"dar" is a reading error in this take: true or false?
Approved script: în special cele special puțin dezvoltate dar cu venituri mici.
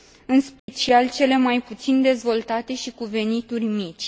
true